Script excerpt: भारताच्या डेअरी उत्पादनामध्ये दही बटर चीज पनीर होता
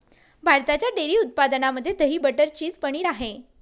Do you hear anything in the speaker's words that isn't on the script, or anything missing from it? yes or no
yes